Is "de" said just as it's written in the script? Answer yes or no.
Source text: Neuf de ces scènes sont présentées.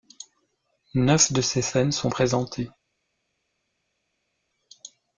yes